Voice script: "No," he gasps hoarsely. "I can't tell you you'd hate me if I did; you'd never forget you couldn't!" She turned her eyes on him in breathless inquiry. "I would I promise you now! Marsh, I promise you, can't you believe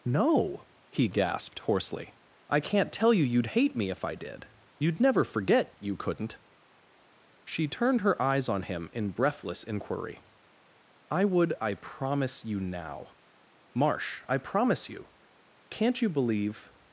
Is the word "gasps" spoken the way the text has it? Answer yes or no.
no